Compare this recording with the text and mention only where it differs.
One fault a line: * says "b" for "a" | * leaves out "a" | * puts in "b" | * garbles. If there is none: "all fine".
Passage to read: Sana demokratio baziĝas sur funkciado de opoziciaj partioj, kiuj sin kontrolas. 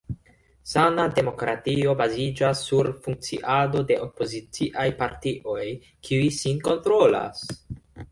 all fine